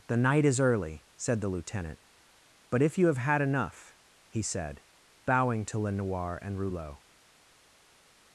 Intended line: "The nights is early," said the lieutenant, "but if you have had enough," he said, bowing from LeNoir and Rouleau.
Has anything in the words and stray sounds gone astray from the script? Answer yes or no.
yes